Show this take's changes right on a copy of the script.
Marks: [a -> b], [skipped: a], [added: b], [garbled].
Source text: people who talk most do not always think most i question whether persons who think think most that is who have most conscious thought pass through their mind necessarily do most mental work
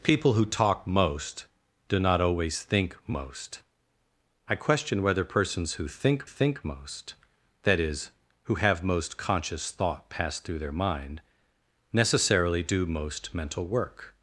people who talk most do not always think most i question whether persons who think think most that is who have most conscious thought pass through their mind necessarily do most mental work